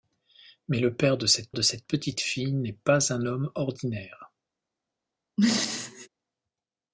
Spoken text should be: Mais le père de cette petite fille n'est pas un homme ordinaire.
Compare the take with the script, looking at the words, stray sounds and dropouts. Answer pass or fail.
fail